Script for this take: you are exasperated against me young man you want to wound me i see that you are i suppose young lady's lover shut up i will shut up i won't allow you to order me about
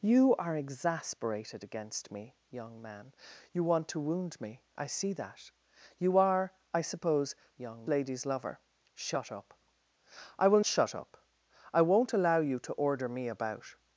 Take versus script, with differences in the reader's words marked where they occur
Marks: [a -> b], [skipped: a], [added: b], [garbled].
you are exasperated against me young man you want to wound me i see that you are i suppose young lady's lover shut up i will shut up i won't allow you to order me about